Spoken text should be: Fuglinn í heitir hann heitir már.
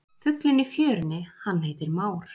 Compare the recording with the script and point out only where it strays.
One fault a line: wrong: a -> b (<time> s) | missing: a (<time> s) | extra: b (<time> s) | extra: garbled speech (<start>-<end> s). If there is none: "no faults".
wrong: heitir -> fjörunni (0.7 s)